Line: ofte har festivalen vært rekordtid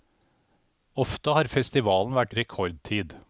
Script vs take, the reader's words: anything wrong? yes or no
no